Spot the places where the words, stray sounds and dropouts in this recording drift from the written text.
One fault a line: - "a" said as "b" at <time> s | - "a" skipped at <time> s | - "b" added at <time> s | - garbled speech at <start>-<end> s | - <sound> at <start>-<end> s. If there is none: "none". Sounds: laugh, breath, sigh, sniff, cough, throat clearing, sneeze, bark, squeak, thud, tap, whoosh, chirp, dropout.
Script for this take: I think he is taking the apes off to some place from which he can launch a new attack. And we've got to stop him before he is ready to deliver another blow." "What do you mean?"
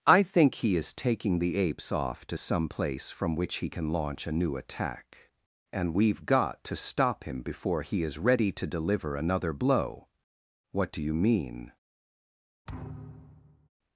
- thud at 12.7-13.7 s